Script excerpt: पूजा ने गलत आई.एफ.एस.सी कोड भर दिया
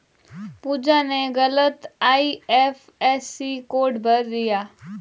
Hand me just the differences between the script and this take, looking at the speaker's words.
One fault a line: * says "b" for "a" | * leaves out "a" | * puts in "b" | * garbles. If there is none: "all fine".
all fine